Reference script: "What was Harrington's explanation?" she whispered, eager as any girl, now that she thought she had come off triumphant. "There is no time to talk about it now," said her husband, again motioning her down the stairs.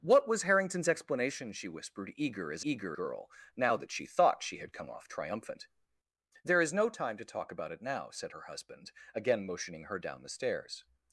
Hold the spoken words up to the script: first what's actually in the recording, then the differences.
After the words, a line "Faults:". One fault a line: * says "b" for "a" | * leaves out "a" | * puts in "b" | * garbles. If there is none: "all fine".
"What was Harrington's explanation?" she whispered, eager as eager girl, now that she thought she had come off triumphant. "There is no time to talk about it now," said her husband, again motioning her down the stairs.
Faults:
* says "eager" for "any"